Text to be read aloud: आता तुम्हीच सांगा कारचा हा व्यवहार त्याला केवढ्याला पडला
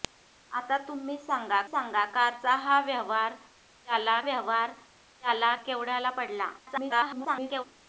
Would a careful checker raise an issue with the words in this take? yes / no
yes